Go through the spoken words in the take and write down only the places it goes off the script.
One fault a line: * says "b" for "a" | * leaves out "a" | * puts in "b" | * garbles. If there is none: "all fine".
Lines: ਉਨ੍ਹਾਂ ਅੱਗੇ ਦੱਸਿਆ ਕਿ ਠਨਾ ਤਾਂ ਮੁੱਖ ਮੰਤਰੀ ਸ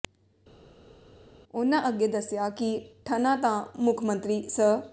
all fine